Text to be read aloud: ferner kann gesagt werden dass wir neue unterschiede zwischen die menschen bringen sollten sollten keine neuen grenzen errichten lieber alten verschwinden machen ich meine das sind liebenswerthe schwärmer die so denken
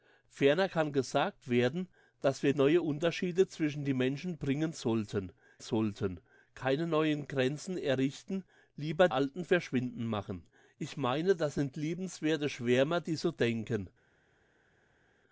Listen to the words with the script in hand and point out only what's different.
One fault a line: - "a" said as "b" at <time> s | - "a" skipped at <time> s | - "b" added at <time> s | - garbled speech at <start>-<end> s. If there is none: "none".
none